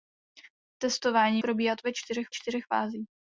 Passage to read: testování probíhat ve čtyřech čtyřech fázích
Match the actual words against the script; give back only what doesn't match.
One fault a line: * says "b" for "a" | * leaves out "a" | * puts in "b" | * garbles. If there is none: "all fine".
all fine